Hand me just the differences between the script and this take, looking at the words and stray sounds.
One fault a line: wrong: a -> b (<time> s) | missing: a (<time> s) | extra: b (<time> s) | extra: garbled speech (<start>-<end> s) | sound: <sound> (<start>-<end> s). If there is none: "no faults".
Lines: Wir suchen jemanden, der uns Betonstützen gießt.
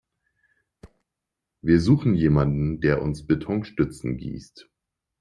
sound: thud (0.8-1.0 s)